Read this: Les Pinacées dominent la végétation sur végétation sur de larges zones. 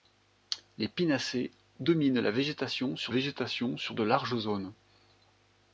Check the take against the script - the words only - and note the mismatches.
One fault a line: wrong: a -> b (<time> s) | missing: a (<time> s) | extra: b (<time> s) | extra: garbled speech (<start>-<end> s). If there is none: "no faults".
no faults